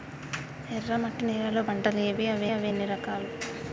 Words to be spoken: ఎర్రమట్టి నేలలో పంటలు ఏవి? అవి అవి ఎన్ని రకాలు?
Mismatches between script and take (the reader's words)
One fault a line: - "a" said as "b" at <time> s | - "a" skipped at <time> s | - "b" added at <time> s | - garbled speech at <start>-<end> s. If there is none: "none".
none